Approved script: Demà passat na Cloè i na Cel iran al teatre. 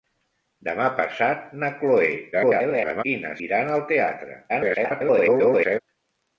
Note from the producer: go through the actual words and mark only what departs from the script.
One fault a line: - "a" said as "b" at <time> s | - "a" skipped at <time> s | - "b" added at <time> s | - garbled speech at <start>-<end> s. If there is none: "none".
- garbled speech at 2.3-3.0 s
- "Cel" skipped at 3.4 s
- garbled speech at 4.5-5.8 s